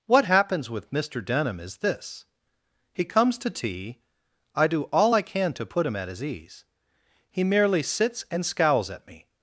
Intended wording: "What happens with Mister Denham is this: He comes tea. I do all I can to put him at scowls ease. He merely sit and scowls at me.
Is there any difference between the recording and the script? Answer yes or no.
yes